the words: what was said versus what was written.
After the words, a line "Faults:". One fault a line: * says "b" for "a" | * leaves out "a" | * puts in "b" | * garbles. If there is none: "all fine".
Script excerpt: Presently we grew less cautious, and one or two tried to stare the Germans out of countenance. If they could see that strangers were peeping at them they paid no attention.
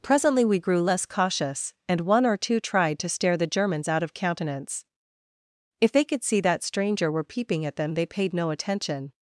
Presently we grew less cautious, and one or two tried to stare the Germans out of countenance. If they could see that stranger were peeping at them they paid no attention.
Faults:
* says "stranger" for "strangers"